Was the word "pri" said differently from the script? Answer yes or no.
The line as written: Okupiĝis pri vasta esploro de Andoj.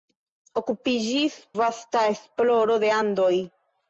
yes